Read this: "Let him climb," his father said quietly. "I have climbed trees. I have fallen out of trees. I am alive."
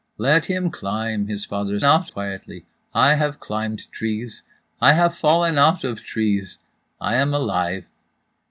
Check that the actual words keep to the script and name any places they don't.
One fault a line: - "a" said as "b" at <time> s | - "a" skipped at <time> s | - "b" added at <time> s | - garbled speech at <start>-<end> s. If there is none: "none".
- "said" said as "out" at 1.8 s